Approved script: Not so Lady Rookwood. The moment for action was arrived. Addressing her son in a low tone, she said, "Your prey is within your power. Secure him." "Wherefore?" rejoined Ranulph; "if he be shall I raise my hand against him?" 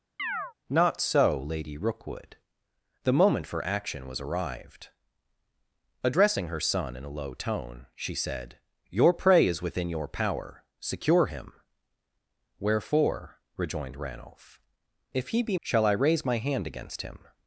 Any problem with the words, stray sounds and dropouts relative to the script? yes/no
yes